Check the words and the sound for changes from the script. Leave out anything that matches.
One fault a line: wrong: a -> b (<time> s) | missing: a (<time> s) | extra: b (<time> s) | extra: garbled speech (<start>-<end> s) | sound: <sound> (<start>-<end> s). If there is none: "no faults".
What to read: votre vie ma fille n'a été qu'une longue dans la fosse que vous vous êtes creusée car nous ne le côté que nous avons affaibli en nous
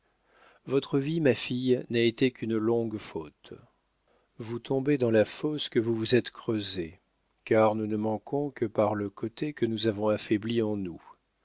extra: faute vous tombez (3.0 s)
extra: manquons que par (8.0 s)